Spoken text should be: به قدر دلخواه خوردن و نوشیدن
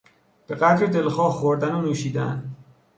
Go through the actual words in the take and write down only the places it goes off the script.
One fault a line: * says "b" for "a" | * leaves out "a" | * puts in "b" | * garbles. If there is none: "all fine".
all fine